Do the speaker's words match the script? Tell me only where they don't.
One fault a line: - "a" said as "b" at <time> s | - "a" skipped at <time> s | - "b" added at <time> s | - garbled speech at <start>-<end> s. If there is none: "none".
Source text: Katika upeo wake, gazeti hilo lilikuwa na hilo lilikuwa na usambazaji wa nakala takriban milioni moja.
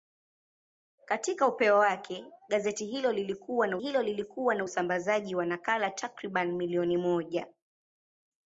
none